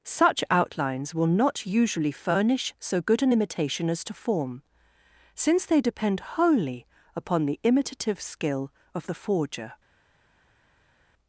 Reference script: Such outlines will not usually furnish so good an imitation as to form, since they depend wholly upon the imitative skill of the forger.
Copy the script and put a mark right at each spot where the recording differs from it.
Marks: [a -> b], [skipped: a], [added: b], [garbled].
Such outlines will not usually furnish so good an imitation as to form, since they depend wholly upon the imitative skill of the forger.